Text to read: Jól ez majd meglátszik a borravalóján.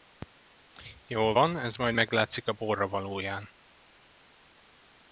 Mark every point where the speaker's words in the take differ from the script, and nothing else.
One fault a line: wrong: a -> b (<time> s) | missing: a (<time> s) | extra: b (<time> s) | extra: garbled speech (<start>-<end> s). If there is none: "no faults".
extra: van (1.3 s)